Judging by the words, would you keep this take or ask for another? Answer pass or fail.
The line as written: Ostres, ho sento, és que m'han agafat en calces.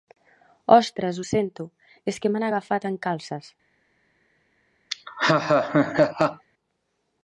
pass